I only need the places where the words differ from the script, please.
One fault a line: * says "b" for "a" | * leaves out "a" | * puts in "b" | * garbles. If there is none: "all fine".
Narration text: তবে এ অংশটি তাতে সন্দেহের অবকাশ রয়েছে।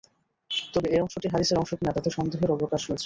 * puts in "হাদীসের অংশ কিনা"